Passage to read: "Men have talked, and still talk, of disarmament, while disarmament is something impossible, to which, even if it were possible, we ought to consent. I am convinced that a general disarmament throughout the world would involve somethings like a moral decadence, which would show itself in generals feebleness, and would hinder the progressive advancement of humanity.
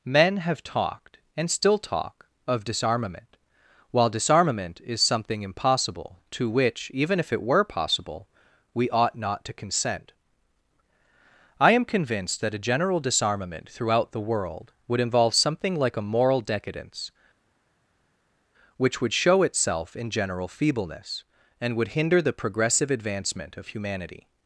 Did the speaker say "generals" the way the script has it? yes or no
no